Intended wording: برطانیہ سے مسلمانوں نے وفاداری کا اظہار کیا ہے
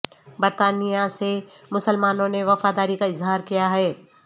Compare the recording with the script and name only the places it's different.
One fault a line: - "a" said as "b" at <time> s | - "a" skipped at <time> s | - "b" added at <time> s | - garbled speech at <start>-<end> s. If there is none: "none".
none